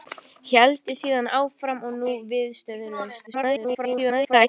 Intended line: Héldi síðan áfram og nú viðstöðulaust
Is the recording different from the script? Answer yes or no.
yes